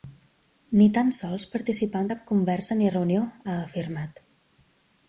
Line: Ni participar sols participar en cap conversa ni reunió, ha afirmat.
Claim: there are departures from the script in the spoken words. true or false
true